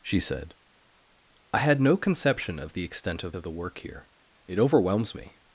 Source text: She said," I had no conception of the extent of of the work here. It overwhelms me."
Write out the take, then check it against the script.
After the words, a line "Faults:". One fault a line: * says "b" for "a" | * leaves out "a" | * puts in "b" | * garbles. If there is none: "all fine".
She said," I had no conception of the extent of of the work here. It overwhelms me."
Faults:
all fine